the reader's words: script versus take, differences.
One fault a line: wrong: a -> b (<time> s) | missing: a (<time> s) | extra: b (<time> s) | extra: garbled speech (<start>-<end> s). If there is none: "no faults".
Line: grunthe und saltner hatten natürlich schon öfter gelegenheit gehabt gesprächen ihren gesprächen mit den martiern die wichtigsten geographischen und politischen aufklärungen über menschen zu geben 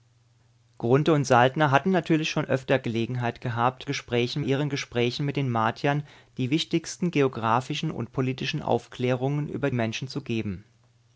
no faults